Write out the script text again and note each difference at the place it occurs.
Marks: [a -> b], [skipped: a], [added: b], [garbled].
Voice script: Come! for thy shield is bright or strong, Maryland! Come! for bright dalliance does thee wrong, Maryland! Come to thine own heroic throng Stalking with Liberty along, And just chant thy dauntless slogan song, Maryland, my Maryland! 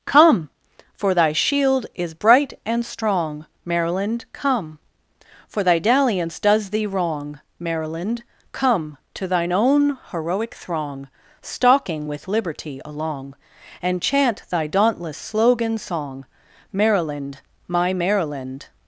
Come! for thy shield is bright [or -> and] strong, Maryland! Come! for [bright -> thy] dalliance does thee wrong, Maryland! Come to thine own heroic throng Stalking with Liberty along, And [skipped: just] chant thy dauntless slogan song, Maryland, my Maryland!